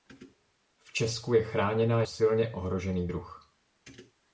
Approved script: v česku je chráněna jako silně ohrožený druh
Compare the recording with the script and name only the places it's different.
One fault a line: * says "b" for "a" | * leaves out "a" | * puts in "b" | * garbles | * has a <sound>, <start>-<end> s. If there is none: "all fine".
* leaves out "jako"